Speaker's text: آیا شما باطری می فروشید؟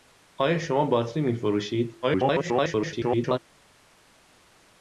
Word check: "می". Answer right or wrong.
right